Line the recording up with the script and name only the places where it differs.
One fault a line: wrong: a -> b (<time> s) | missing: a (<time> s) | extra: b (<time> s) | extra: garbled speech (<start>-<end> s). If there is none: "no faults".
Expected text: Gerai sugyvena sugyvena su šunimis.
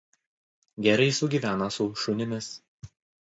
missing: sugyvena (1.7 s)